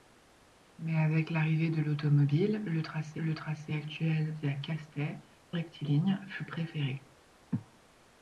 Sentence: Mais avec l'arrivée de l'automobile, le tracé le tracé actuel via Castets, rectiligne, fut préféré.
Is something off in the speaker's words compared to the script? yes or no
no